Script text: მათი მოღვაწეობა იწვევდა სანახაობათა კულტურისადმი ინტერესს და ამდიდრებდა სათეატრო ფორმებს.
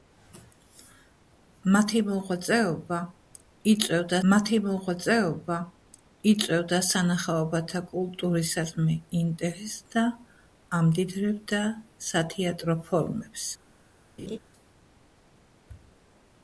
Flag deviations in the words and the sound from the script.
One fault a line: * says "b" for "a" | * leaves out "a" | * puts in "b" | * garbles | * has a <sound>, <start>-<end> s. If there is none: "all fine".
* puts in "მათი მოღვაწეობა იწვევდა"
* has a laugh, 14.2-14.4 s